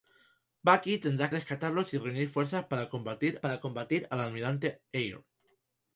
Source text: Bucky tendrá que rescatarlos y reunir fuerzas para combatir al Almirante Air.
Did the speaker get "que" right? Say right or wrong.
wrong